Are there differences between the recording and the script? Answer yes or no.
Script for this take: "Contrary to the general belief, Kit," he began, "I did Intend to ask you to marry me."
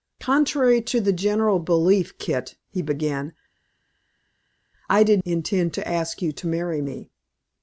no